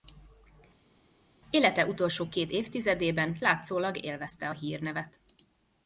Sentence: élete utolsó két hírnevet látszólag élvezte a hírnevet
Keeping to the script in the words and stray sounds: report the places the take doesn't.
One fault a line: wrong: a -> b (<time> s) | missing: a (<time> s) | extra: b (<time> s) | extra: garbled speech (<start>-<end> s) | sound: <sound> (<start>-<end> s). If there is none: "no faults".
wrong: hírnevet -> évtizedében (2.5 s)